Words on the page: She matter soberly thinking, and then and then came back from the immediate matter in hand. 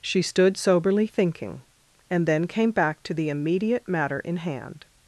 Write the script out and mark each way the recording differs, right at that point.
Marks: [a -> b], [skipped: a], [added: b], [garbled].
She [matter -> stood] soberly thinking, and then [skipped: and then] came back [from -> to] the immediate matter in hand.